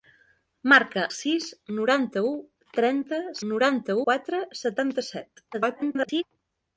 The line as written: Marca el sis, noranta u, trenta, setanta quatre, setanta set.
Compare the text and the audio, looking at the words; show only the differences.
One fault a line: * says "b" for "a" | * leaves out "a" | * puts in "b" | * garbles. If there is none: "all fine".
* leaves out "el"
* says "noranta" for "setanta"
* garbles